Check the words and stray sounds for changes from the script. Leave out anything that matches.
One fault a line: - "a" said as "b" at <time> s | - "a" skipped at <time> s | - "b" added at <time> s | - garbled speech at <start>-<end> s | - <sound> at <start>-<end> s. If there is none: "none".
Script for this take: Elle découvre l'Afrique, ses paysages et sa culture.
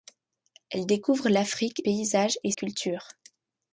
- "ses" skipped at 1.8 s
- "sa" skipped at 2.5 s